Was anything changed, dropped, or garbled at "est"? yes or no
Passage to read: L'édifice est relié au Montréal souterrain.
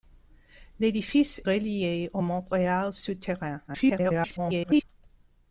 yes